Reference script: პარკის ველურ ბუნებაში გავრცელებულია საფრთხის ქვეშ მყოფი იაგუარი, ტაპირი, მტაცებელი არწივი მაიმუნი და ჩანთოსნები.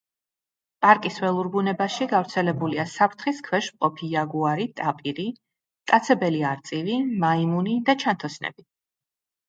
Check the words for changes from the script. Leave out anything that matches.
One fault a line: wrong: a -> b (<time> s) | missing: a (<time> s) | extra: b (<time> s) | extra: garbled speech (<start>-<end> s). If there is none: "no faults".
no faults